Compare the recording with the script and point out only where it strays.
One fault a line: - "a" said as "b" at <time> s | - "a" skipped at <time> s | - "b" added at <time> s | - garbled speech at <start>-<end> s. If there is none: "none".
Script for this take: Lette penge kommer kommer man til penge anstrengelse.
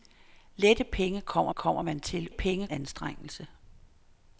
none